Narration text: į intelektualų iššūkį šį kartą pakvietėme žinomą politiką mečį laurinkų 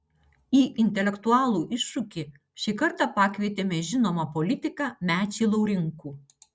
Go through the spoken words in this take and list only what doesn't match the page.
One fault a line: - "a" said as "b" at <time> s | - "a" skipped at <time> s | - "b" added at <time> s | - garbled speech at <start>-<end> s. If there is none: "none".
none